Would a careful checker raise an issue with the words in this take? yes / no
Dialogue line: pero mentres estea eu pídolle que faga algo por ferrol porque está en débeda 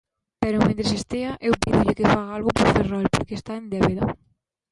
no